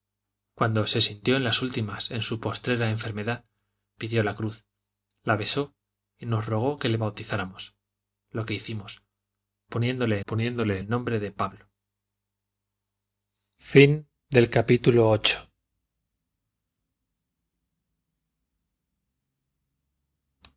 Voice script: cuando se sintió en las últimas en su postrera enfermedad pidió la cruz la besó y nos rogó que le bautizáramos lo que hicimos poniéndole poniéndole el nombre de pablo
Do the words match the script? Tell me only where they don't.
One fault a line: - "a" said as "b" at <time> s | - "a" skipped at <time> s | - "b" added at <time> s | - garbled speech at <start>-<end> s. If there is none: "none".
none